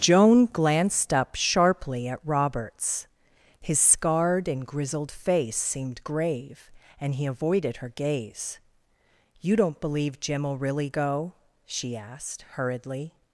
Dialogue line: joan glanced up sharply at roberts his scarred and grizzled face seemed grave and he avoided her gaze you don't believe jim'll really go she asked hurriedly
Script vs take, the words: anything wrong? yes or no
no